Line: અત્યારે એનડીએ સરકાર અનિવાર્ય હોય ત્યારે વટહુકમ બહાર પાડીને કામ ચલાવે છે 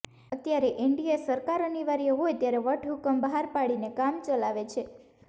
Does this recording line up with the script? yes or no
yes